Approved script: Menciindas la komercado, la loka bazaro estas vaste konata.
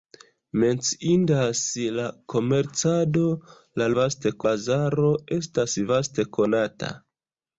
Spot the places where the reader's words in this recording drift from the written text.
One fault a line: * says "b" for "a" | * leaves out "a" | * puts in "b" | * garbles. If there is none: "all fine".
* says "vaste" for "loka"